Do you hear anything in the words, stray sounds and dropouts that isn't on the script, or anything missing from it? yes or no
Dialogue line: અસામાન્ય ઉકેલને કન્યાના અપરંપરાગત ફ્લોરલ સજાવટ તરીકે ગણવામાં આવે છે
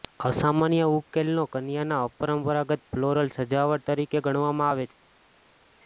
no